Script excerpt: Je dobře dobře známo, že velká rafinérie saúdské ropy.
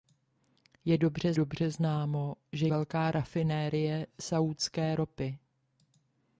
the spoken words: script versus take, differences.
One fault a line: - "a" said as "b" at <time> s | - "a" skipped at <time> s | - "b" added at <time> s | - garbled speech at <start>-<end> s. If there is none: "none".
none